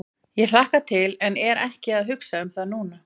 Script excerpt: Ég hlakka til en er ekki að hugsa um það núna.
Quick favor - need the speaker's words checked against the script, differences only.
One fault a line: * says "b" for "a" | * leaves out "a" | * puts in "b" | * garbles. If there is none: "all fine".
all fine